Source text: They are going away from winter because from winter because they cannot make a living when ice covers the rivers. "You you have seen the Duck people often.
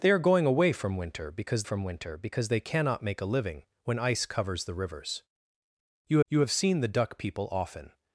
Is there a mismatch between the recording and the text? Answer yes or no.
no